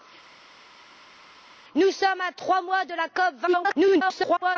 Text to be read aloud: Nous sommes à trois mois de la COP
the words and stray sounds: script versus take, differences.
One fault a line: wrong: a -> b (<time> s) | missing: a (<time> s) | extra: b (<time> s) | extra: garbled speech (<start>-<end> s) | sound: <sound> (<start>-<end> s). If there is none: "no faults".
extra: garbled speech (3.5-4.6 s)